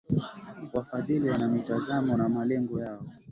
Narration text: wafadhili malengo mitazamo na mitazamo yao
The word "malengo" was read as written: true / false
false